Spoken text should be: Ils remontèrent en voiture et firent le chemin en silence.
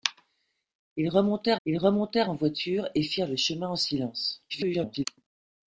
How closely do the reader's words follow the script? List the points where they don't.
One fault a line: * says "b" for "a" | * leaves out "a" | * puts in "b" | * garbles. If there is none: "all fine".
* puts in "ils remontèrent"
* garbles